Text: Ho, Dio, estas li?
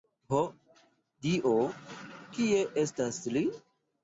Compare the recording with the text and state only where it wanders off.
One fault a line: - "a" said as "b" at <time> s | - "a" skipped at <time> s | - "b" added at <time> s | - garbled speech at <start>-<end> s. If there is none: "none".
- "kie" added at 2.4 s